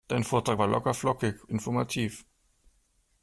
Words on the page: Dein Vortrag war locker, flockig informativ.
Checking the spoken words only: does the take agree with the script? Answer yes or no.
yes